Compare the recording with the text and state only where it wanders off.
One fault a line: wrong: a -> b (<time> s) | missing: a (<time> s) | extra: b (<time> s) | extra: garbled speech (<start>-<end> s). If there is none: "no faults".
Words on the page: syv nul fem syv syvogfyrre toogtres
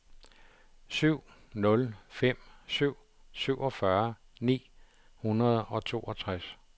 extra: ni hundrede og (4.4 s)